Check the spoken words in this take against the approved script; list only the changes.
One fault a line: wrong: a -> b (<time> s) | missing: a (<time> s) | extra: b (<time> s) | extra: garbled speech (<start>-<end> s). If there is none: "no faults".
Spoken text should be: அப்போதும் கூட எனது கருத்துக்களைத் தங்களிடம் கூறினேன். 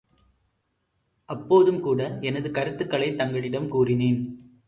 no faults